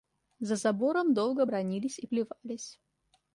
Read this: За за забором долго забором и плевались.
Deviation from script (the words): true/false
true